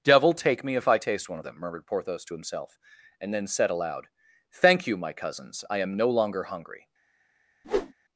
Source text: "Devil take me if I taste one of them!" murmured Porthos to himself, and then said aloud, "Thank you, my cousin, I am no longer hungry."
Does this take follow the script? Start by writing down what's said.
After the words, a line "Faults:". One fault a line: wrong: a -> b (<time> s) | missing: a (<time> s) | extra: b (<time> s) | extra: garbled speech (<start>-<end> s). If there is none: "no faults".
"Devil take me if I taste one of them!" murmured Porthos to himself, and then said aloud, "Thank you, my cousins, I am no longer hungry."
Faults:
wrong: cousin -> cousins (5.1 s)